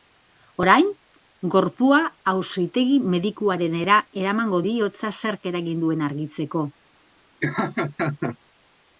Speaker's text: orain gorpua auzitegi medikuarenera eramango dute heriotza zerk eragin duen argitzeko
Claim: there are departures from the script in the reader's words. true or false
true